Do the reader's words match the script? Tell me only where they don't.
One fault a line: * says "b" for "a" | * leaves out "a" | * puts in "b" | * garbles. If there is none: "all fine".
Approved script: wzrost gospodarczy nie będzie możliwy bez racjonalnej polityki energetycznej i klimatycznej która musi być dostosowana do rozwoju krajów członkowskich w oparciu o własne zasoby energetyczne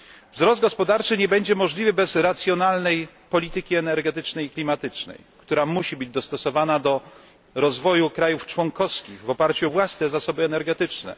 all fine